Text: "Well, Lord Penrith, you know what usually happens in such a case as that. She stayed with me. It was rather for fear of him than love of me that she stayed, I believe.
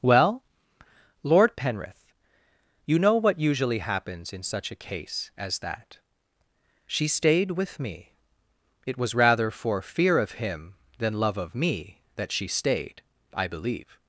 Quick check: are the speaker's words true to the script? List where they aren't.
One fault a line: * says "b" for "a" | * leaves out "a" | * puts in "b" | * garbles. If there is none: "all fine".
all fine